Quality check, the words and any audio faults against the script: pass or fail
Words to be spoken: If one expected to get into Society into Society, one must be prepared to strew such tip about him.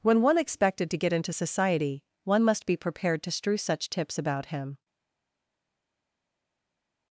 fail